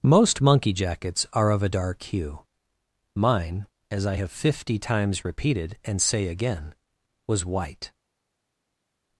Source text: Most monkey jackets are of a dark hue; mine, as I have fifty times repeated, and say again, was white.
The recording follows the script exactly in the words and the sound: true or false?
true